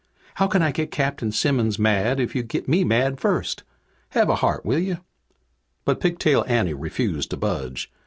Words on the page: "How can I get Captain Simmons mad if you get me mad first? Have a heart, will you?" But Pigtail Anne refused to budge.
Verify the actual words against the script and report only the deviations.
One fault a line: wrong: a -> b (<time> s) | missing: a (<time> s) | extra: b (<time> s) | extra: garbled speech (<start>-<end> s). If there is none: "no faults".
no faults